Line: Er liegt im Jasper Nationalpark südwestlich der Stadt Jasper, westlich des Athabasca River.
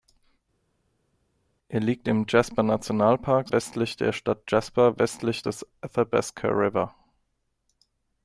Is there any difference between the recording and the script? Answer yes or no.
yes